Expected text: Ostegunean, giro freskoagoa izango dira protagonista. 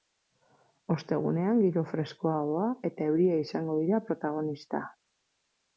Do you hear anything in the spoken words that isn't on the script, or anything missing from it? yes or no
yes